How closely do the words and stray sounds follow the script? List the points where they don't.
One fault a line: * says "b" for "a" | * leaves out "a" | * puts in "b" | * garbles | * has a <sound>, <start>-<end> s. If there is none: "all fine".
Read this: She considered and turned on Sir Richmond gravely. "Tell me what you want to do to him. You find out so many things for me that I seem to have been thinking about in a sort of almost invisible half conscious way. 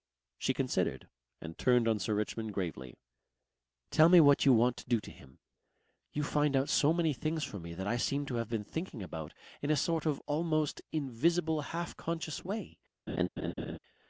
* has a laugh, 13.1-13.8 s